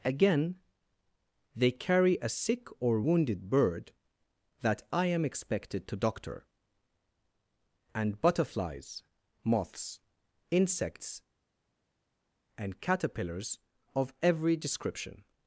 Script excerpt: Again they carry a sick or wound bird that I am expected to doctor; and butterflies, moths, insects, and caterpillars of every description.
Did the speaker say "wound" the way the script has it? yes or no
no